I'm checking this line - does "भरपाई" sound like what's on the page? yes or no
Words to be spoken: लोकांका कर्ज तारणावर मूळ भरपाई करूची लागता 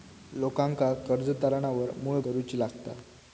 no